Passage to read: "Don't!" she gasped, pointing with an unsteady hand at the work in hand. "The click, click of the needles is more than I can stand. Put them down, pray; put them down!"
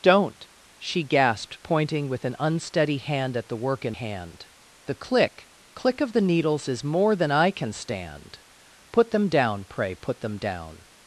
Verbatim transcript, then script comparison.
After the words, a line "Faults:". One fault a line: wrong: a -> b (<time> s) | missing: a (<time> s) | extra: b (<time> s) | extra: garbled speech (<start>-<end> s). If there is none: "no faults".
"Don't!" she gasped, pointing with an unsteady hand at the work in hand. "The click, click of the needles is more than I can stand. Put them down, pray; put them down!"
Faults:
no faults